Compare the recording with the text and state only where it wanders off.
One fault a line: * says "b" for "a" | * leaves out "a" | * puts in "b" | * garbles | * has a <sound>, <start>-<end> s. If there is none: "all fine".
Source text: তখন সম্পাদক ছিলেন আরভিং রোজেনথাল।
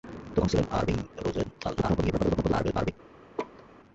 * leaves out "সম্পাদক"
* garbles
* has a laugh, 3.4-3.6 s